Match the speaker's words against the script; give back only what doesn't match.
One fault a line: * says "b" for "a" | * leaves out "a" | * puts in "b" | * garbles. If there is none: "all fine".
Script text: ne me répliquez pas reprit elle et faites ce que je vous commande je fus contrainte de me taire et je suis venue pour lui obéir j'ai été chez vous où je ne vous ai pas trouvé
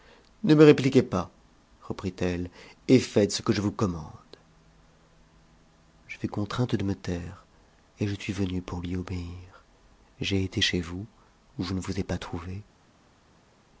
all fine